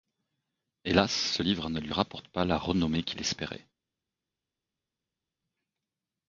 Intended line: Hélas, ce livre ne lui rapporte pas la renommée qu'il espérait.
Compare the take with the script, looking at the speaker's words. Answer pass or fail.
pass